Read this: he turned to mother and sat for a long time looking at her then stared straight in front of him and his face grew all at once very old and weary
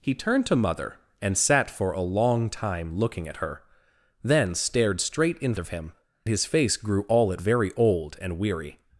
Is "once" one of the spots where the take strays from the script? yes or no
yes